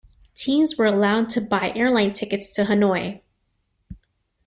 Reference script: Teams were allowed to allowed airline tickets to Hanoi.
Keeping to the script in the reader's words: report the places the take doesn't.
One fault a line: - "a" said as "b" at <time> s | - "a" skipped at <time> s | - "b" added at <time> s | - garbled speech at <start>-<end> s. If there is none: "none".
- "allowed" said as "buy" at 1.4 s